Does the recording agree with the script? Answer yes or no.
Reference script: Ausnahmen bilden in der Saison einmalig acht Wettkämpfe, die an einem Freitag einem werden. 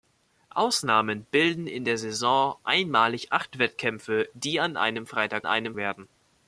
yes